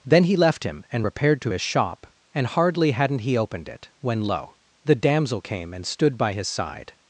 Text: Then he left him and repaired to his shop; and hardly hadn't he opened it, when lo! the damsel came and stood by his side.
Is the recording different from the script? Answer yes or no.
no